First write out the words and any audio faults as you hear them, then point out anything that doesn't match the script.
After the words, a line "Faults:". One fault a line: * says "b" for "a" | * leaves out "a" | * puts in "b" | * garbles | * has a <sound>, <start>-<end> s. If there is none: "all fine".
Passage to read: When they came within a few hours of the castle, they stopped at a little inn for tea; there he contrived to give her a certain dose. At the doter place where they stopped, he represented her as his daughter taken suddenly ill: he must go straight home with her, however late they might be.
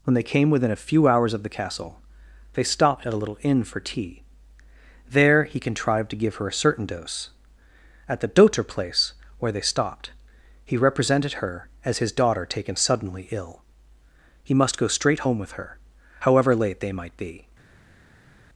When they came within a few hours of the castle, they stopped at a little inn for tea; there he contrived to give her a certain dose. At the doter place where they stopped, he represented her as his daughter taken suddenly ill: he must go straight home with her, however late they might be.
Faults:
all fine